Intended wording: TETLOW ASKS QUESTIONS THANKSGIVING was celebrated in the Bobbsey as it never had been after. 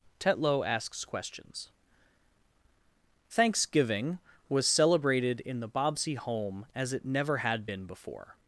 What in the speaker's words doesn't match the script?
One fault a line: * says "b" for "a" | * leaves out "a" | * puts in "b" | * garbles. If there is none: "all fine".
* puts in "home"
* says "before" for "after"